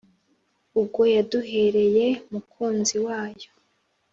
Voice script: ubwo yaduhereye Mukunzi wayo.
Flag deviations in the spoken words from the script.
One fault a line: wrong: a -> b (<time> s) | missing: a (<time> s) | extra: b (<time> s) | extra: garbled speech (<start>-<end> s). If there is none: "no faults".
no faults